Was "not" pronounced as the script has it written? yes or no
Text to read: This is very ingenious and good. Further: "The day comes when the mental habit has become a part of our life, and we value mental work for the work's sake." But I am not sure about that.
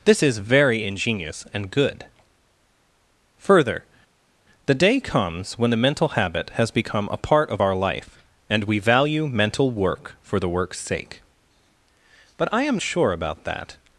no